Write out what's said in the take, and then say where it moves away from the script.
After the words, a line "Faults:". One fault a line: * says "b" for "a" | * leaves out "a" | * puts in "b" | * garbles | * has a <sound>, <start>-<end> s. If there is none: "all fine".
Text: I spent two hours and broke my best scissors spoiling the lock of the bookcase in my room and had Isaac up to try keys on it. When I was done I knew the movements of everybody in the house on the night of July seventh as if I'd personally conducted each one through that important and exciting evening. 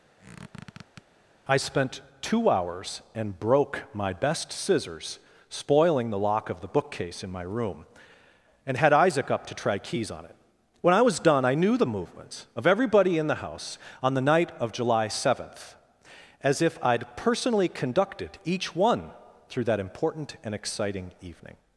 I spent two hours and broke my best scissors spoiling the lock of the bookcase in my room and had Isaac up to try keys on it. When I was done I knew the movements of everybody in the house on the night of July seventh as if I'd personally conducted each one through that important and exciting evening.
Faults:
* has a squeak, 0.2-1.0 s